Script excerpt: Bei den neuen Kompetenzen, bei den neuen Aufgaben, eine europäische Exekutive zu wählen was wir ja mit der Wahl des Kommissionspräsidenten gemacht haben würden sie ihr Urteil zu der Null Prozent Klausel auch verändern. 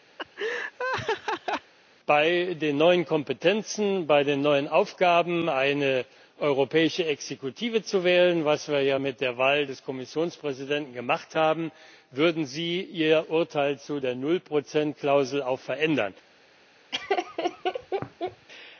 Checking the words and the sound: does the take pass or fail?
fail